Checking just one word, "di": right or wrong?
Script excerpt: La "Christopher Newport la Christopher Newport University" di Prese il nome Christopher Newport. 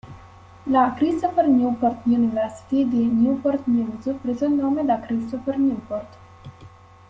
wrong